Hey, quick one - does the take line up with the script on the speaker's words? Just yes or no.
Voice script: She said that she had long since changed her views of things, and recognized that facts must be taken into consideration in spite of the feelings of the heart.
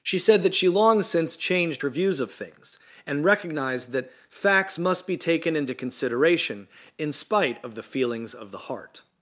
no